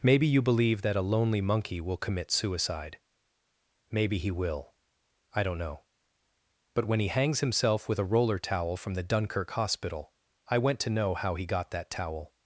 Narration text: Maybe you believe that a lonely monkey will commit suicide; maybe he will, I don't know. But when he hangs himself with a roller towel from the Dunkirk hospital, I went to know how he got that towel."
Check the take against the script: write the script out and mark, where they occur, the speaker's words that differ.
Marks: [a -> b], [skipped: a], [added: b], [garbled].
Maybe you believe that a lonely monkey will commit suicide; maybe he will, I don't know. But when he hangs himself with a roller towel from the Dunkirk hospital, I went to know how he got that towel."